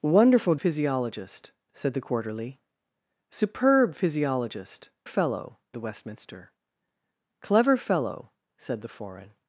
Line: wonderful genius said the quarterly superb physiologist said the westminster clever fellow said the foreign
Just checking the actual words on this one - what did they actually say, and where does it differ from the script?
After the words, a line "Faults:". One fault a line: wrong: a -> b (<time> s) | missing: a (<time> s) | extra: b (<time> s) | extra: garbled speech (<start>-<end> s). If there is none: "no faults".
wonderful physiologist said the quarterly superb physiologist fellow the westminster clever fellow said the foreign
Faults:
wrong: genius -> physiologist (0.6 s)
wrong: said -> fellow (5.0 s)